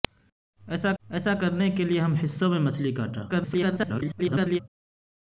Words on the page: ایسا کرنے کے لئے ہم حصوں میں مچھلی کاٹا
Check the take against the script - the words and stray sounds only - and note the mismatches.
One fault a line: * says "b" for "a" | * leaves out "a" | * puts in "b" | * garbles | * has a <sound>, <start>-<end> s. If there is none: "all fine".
* puts in "ایسا"
* garbles